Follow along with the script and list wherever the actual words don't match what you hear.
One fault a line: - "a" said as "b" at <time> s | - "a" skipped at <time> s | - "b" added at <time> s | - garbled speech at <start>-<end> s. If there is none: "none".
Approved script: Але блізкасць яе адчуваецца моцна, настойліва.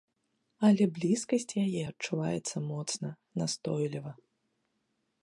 none